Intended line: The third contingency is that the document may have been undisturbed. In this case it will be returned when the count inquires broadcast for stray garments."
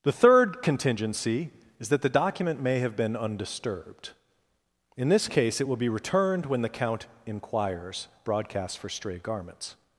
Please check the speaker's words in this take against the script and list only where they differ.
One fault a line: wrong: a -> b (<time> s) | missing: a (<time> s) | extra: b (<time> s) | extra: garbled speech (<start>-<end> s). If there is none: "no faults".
no faults